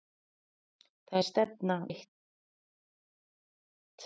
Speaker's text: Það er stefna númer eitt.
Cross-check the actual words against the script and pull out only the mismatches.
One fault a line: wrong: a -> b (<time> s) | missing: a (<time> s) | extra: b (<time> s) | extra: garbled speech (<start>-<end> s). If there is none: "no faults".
missing: númer (1.8 s)